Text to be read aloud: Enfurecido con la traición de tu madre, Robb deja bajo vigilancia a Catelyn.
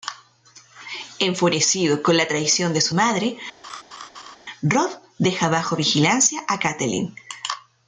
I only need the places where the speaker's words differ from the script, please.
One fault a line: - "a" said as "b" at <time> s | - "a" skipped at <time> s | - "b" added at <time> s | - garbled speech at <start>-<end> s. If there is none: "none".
- "tu" said as "su" at 2.8 s